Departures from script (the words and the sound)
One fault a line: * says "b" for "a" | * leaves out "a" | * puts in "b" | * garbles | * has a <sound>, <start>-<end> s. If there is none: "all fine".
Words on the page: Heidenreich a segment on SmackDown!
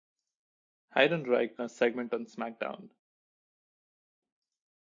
all fine